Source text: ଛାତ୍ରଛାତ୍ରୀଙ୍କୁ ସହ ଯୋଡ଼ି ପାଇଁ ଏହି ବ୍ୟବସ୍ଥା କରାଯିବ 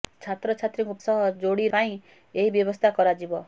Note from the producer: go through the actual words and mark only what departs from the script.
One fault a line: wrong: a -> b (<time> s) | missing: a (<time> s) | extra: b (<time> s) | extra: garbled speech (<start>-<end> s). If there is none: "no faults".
no faults